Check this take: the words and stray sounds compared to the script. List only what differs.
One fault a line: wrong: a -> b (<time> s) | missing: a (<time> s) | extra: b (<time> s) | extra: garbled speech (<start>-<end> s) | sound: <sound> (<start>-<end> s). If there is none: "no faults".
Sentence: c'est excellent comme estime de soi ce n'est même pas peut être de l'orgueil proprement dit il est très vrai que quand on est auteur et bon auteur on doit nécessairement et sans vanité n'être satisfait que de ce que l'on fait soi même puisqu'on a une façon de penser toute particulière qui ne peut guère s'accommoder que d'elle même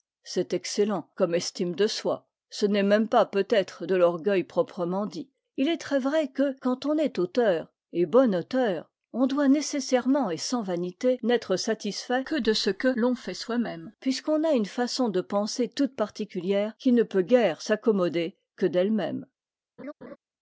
sound: laugh (19.8-20.2 s)